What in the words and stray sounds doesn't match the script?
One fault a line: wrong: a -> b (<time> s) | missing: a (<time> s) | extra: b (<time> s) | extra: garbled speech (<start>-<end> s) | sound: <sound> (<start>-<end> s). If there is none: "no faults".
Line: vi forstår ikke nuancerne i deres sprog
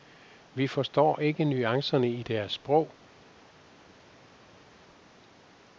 no faults